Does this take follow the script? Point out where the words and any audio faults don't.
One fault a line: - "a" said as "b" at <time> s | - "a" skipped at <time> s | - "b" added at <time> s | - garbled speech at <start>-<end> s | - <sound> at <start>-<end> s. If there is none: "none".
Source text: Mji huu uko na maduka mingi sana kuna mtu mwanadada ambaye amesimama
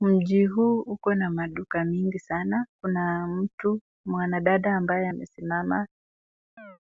- chirp at 6.6-6.8 s